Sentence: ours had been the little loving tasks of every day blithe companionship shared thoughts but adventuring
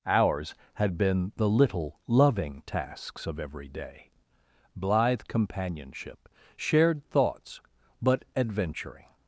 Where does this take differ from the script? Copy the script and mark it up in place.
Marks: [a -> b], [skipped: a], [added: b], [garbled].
ours had been the little loving tasks of every day blithe companionship shared thoughts but adventuring